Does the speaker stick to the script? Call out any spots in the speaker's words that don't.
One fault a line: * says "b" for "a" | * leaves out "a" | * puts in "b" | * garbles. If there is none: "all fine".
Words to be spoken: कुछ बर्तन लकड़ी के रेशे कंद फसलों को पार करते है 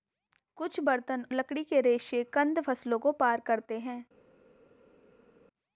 all fine